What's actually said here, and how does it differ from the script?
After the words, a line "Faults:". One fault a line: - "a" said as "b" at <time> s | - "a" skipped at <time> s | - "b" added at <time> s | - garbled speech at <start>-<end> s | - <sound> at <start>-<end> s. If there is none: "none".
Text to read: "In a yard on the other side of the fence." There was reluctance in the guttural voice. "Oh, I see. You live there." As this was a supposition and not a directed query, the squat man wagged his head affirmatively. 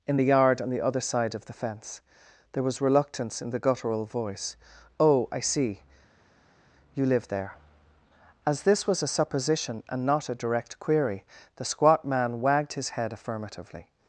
"In the yard on the other side of the fence." There was reluctance in the guttural voice. "Oh, I see. You live there." As this was a supposition and not a direct query, the squat man wagged his head affirmatively.
Faults:
- "a" said as "the" at 0.1 s
- "directed" said as "direct" at 10.3 s